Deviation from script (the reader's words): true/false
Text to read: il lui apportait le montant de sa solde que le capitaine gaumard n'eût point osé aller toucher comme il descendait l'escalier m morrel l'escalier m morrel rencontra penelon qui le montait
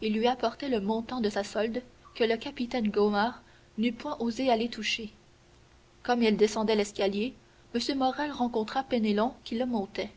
true